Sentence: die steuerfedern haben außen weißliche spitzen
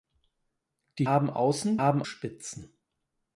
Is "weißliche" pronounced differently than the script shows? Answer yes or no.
yes